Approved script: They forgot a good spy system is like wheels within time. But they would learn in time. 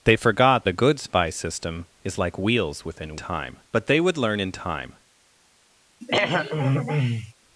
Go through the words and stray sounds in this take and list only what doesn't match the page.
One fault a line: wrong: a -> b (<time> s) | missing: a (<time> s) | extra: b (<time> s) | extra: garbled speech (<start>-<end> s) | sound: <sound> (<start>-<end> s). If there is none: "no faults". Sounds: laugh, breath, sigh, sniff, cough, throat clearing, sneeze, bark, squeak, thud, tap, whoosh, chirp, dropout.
sound: throat clearing (6.0-7.3 s)